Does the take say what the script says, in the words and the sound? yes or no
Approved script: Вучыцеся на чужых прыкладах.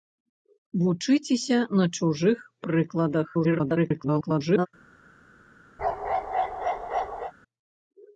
no